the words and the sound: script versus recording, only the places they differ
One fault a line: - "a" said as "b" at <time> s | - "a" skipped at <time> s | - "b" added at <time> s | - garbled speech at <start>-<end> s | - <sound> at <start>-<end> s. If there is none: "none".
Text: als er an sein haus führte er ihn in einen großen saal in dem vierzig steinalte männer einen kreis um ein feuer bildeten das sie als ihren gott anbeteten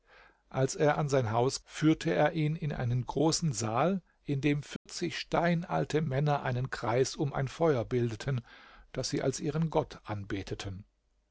- dropout at 4.8-4.9 s